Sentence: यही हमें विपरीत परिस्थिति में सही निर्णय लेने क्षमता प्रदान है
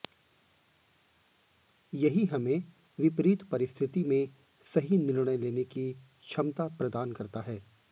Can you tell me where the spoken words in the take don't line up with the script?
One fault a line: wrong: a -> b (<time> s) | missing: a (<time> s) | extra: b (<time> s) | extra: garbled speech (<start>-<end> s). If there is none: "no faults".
extra: की (5.7 s)
extra: करता (7.1 s)